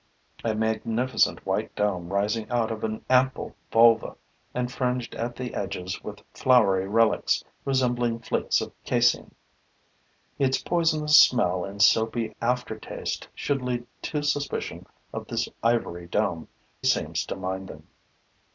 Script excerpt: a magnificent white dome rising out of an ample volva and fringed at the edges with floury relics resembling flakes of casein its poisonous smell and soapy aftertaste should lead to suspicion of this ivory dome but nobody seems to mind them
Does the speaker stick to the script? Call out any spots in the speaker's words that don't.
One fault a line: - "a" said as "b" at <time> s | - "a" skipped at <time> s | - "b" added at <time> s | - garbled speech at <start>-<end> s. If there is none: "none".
- "but nobody" skipped at 16.5 s